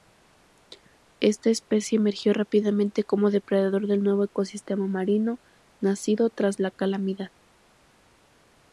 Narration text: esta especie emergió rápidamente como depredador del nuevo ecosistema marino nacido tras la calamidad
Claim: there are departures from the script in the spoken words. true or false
false